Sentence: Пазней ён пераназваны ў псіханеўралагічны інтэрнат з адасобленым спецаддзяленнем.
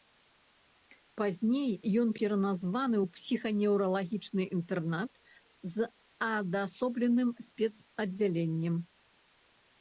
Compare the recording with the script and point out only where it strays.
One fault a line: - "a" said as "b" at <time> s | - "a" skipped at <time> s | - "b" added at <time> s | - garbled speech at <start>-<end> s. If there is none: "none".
none